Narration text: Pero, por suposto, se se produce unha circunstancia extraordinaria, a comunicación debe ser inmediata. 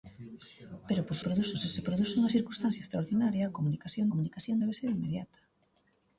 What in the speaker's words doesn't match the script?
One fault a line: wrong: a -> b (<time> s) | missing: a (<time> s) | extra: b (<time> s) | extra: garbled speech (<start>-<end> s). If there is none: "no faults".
wrong: suposto -> produce (1.3 s)
extra: comunicación (4.1 s)